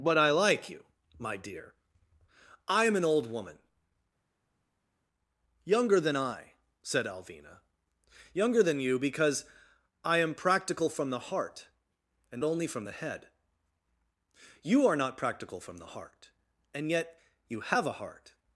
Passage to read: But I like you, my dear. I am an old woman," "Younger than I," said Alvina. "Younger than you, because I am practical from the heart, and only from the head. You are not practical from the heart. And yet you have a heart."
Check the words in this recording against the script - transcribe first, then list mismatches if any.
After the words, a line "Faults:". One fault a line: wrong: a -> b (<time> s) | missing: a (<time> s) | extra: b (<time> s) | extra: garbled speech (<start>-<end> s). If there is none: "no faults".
But I like you, my dear. I am an old woman," "Younger than I," said Alvina. "Younger than you, because I am practical from the heart, and only from the head. You are not practical from the heart. And yet you have a heart."
Faults:
no faults